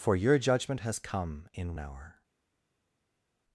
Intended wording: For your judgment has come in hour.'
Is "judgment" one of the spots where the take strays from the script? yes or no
no